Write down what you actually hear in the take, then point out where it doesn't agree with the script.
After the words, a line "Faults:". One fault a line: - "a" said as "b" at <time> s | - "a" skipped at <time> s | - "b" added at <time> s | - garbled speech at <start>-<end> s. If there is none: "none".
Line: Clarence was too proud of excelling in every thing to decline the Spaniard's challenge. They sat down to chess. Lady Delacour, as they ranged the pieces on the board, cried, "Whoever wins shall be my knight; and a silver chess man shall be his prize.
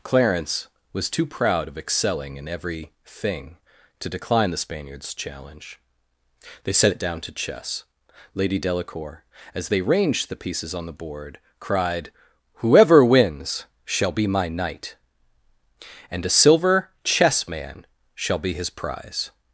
Clarence was too proud of excelling in every thing to decline the Spaniard's challenge. They set it down to chess. Lady Delacour, as they ranged the pieces on the board, cried, "Whoever wins shall be my knight; and a silver chess man shall be his prize.
Faults:
- "sat" said as "set it" at 6.7 s